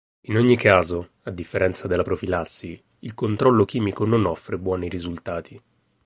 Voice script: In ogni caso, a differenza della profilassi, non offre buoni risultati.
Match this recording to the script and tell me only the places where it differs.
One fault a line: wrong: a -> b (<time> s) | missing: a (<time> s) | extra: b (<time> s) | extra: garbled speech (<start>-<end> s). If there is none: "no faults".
extra: il controllo chimico (3.0 s)